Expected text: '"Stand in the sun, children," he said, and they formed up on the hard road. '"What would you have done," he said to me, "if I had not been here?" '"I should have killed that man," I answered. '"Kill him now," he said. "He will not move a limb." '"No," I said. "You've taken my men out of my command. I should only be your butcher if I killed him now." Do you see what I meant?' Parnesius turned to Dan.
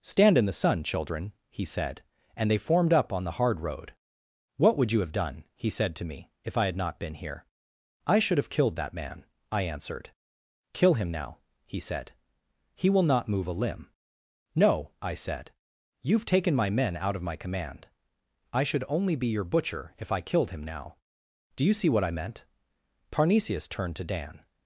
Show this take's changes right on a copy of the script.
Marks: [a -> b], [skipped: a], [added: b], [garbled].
'"Stand in the sun, children," he said, and they formed up on the hard road. '"What would you have done," he said to me, "if I had not been here?" '"I should have killed that man," I answered. '"Kill him now," he said. "He will not move a limb." '"No," I said. "You've taken my men out of my command. I should only be your butcher if I killed him now." Do you see what I meant?' Parnesius turned to Dan.